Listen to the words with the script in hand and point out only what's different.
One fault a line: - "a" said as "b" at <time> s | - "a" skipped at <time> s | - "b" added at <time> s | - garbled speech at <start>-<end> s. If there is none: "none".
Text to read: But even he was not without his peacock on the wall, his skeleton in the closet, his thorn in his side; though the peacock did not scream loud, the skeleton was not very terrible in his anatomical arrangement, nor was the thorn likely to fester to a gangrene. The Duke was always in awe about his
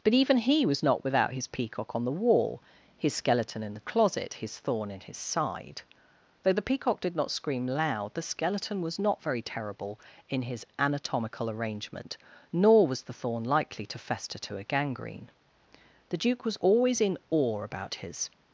none